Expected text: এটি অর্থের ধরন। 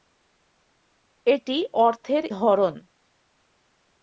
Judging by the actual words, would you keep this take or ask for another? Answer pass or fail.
pass